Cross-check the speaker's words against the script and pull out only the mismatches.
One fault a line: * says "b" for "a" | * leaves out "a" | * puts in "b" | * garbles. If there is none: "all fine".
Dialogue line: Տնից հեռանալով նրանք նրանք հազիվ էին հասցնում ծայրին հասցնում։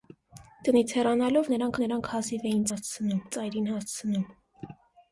all fine